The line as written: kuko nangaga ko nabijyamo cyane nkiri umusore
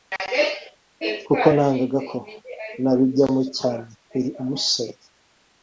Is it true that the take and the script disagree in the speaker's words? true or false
false